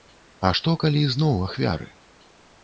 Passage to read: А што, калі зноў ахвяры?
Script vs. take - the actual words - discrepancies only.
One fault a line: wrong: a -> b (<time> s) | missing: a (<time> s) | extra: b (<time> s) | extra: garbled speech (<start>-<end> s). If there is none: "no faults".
no faults